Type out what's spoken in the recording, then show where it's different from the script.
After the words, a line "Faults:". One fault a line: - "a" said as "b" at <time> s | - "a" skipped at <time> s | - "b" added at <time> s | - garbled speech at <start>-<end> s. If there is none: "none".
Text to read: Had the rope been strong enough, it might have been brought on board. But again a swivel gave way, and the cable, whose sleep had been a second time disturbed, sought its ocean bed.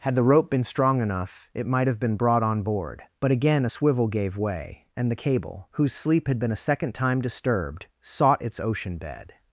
Had the rope been strong enough, it might have been brought on board. But again a swivel gave way, and the cable, whose sleep had been a second time disturbed, sought its ocean bed.
Faults:
none